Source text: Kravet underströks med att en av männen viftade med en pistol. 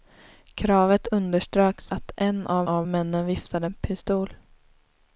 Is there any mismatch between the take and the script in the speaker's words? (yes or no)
yes